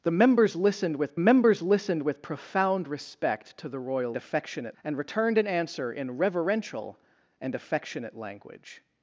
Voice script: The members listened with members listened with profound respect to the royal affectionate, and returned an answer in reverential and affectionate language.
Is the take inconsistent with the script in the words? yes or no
no